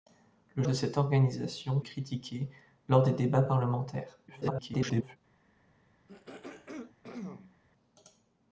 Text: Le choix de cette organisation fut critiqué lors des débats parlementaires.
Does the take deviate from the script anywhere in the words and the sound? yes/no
yes